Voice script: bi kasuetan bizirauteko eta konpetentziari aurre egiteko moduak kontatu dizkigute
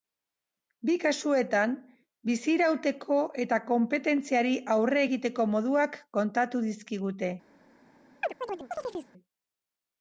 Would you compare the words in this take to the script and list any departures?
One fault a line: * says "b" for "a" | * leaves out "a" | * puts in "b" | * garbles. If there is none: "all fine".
all fine